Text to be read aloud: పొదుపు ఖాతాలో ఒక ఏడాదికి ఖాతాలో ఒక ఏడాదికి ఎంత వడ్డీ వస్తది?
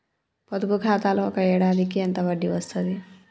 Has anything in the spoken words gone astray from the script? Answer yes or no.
yes